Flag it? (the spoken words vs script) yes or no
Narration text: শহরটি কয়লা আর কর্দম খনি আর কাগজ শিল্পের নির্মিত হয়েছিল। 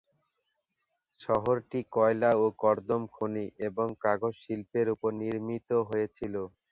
yes